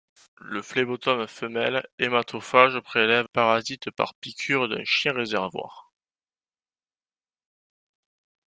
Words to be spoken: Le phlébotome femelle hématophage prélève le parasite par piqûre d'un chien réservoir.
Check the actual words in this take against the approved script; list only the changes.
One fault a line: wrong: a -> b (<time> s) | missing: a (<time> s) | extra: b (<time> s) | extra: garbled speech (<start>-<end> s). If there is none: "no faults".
missing: le (3.3 s)